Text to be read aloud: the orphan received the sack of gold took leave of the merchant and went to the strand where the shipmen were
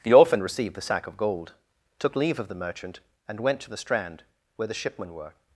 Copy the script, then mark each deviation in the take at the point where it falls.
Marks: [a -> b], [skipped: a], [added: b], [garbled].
the orphan received the sack of gold took leave of the merchant and went to the strand where the shipmen were